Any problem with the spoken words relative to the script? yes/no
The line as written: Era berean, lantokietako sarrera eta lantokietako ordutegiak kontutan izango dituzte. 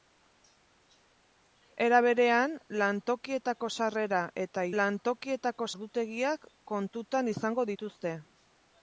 no